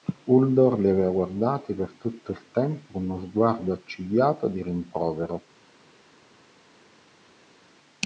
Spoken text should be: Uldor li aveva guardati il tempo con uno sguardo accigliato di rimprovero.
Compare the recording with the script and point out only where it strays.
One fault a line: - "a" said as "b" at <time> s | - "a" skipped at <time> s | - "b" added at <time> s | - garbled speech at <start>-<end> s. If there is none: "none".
- "per tutto" added at 1.8 s